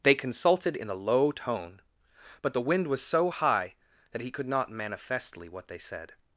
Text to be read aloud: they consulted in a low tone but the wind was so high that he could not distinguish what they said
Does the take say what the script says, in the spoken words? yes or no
no